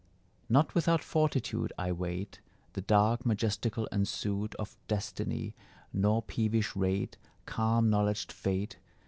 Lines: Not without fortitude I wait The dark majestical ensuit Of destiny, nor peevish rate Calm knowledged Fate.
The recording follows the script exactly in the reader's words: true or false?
true